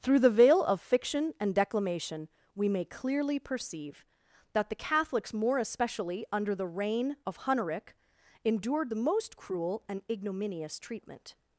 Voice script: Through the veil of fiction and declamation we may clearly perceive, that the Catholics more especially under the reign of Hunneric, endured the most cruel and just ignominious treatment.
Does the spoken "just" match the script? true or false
false